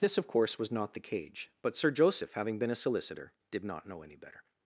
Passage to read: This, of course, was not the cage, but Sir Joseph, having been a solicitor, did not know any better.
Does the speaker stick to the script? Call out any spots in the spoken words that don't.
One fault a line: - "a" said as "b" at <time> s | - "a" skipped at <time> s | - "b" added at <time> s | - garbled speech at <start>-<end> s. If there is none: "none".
none